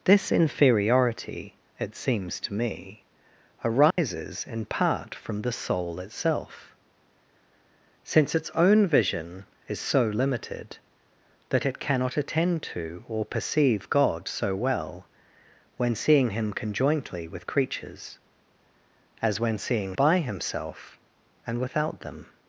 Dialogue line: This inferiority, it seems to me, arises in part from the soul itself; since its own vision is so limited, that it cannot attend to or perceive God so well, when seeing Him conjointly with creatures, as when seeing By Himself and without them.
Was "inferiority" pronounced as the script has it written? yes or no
yes